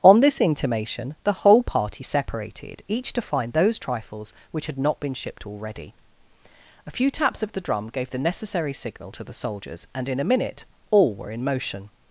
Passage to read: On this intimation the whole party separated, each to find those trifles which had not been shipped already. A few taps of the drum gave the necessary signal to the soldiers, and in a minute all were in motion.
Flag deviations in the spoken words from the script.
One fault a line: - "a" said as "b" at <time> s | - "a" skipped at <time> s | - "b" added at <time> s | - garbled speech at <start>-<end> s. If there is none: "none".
none